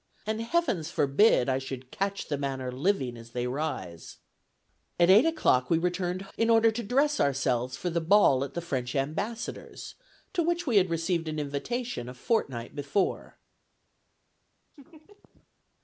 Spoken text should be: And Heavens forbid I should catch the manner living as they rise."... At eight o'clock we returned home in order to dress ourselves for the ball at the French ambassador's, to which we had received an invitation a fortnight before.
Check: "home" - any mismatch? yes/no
yes